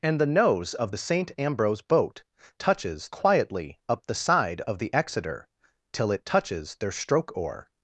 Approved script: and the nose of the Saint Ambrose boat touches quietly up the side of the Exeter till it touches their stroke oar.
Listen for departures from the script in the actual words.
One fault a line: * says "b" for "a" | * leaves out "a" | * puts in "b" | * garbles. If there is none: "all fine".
all fine